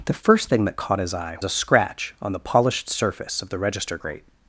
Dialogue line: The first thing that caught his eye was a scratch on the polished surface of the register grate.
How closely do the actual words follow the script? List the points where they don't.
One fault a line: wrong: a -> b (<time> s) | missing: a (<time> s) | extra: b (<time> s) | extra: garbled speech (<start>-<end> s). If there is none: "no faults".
missing: was (1.4 s)